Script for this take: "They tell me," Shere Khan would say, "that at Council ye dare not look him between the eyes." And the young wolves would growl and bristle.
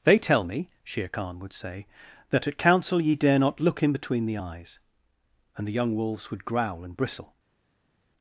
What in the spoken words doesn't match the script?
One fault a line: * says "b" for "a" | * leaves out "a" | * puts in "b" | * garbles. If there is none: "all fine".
all fine